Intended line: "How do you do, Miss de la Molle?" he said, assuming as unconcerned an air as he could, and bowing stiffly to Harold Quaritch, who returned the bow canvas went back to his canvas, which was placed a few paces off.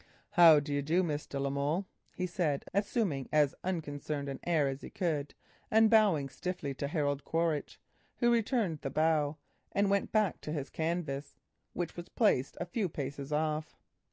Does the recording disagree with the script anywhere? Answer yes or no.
yes